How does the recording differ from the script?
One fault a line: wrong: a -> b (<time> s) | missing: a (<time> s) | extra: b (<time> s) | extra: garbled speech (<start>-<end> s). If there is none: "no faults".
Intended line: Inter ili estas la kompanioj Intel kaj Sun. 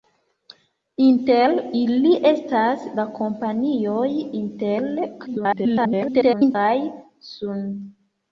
extra: garbled speech (5.3-6.6 s)